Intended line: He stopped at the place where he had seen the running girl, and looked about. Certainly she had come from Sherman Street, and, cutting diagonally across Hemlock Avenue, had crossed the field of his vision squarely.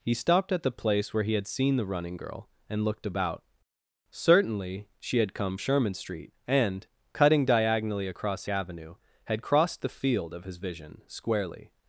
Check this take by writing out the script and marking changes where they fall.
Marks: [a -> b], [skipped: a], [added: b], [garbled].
He stopped at the place where he had seen the running girl, and looked about. Certainly she had come [skipped: from] Sherman Street, and, cutting diagonally across [skipped: Hemlock] Avenue, had crossed the field of his vision squarely.